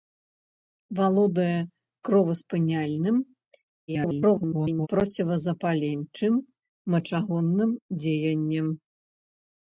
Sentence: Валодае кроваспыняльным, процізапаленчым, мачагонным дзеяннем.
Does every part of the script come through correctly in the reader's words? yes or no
no